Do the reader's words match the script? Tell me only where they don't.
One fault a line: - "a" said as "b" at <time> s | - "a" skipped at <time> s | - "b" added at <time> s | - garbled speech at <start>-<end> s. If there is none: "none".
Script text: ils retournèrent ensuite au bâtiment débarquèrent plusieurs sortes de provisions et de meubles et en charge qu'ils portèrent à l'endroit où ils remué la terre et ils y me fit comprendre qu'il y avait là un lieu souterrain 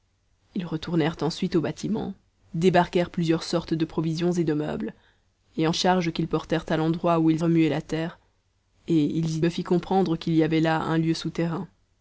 none